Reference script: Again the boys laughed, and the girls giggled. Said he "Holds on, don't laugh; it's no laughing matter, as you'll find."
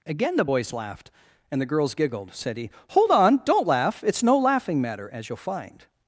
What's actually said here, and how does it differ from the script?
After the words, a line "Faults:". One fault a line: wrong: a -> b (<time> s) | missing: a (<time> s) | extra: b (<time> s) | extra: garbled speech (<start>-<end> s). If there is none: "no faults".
Again the boys laughed, and the girls giggled. Said he "Hold on, don't laugh; it's no laughing matter, as you'll find."
Faults:
wrong: Holds -> Hold (2.9 s)